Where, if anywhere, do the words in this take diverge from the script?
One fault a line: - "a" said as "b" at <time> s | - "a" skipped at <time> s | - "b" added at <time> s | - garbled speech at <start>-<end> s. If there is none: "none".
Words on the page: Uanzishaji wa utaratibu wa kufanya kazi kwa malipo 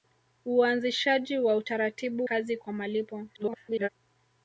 - "wa kufanya" skipped at 2.3 s
- garbled speech at 3.3-3.9 s